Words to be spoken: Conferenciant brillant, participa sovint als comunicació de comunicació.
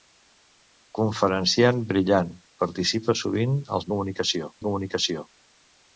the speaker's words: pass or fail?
pass